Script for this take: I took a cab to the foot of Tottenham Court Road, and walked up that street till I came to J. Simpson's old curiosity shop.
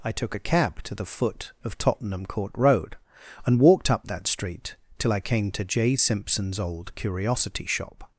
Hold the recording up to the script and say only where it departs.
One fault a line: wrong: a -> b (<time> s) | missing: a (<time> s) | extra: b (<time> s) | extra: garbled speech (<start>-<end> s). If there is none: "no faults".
no faults